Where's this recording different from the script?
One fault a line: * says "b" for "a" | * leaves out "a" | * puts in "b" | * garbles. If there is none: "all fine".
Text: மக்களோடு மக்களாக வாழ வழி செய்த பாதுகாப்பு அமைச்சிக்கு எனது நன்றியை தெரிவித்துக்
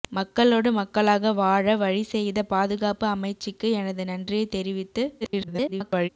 * garbles